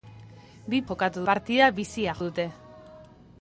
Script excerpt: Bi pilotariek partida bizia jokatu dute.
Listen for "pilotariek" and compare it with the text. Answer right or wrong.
wrong